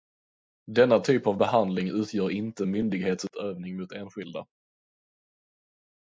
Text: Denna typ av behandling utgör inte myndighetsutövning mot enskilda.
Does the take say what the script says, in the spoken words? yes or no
yes